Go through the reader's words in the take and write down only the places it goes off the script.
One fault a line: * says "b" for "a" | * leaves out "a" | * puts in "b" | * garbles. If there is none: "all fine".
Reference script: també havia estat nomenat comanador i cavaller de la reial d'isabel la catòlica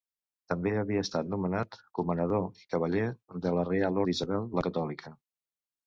all fine